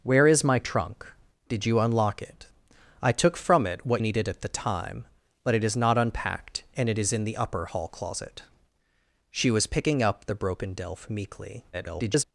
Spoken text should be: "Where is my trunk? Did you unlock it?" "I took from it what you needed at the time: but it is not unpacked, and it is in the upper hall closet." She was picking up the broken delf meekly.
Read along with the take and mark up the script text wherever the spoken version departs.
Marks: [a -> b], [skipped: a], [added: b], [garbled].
"Where is my trunk? Did you unlock it?" "I took from it what [skipped: you] needed at the time: but it is not unpacked, and it is in the upper hall closet." She was picking up the broken delf meekly. [garbled]